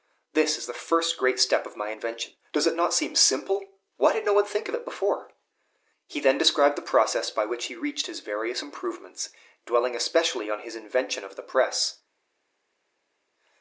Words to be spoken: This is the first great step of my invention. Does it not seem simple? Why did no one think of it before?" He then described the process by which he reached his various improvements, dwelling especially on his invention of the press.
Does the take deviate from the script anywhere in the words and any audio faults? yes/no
no